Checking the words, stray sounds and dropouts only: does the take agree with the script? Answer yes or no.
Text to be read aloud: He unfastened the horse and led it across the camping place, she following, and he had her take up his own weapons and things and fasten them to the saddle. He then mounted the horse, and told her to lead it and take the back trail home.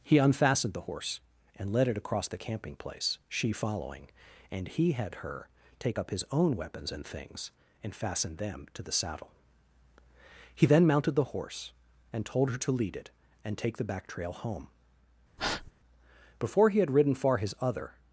no